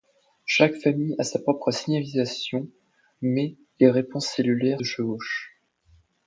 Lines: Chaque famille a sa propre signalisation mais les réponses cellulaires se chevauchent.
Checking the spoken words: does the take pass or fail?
fail